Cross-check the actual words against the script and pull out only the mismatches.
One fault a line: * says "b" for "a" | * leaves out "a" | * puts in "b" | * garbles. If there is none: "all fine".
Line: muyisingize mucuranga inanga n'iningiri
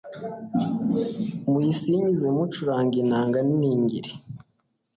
all fine